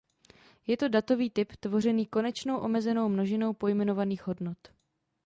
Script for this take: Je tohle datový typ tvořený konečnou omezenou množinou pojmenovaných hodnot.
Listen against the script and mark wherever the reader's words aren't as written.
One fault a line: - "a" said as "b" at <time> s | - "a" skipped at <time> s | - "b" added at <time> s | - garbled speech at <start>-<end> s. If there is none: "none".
- "tohle" said as "to" at 0.8 s